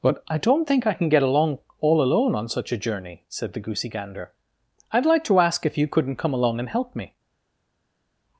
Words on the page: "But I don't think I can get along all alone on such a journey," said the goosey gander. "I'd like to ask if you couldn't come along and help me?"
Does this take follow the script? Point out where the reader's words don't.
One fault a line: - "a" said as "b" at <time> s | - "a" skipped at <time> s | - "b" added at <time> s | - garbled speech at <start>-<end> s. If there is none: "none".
none